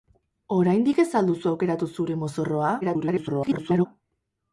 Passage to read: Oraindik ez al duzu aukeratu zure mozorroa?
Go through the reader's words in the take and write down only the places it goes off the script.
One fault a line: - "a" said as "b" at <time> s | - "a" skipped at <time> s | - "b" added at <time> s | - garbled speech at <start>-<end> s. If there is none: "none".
- garbled speech at 2.8-3.9 s